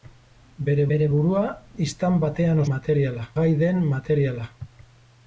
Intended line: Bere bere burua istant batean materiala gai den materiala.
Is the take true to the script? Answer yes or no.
yes